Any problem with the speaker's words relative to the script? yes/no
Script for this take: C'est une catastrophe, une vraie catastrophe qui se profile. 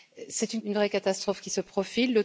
yes